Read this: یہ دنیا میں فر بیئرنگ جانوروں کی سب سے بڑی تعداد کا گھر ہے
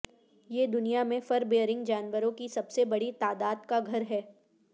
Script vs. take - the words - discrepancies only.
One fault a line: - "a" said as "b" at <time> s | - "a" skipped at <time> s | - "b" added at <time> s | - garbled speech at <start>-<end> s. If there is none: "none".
none